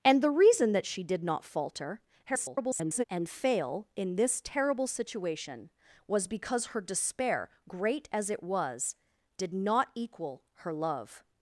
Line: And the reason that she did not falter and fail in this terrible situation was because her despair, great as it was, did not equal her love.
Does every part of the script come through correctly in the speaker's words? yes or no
no